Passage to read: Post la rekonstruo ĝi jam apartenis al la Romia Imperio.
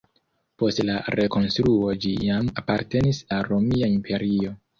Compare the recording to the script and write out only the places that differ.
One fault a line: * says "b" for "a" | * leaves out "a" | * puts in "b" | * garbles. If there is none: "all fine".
* leaves out "al"